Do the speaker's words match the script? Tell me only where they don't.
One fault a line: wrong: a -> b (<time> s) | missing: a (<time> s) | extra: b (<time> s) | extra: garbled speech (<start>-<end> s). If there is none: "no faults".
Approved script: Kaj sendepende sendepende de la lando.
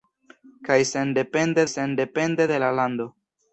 no faults